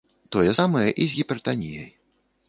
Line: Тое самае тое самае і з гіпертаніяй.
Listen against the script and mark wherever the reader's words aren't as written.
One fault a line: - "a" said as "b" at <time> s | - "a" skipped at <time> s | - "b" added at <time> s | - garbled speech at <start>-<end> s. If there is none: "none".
- "тое самае" skipped at 0.8 s